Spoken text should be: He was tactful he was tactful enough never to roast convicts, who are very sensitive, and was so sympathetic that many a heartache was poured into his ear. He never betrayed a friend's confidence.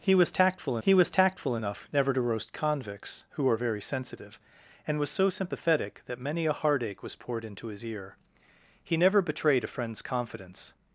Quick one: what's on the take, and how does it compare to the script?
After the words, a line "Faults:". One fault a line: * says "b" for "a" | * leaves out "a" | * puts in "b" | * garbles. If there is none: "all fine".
He was tactful he was tactful enough never to roast convicts, who are very sensitive, and was so sympathetic that many a heartache was poured into his ear. He never betrayed a friend's confidence.
Faults:
all fine